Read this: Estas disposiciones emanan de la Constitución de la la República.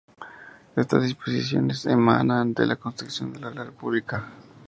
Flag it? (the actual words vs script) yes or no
no